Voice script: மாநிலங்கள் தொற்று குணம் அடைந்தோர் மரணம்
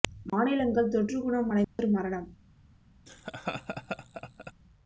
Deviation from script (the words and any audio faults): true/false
true